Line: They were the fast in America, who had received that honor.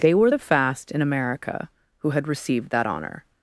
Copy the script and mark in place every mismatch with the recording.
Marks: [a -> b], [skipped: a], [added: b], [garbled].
They were the fast in America, who had received that honor.